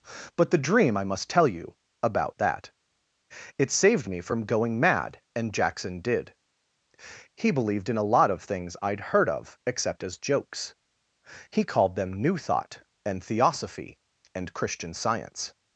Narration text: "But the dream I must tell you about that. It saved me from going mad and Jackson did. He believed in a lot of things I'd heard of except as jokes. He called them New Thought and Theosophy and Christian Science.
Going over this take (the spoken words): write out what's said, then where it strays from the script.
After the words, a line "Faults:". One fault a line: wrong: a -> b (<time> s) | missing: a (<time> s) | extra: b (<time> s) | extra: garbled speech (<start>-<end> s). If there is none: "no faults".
"But the dream I must tell you about that. It saved me from going mad and Jackson did. He believed in a lot of things I'd heard of except as jokes. He called them New Thought and Theosophy and Christian Science.
Faults:
no faults